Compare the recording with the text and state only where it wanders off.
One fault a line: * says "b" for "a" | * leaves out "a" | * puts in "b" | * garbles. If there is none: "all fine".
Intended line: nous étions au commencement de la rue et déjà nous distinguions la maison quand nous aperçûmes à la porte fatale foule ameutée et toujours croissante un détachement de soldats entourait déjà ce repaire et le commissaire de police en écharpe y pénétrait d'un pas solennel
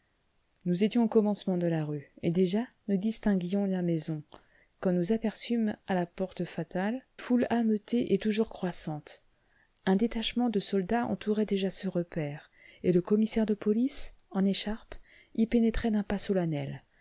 all fine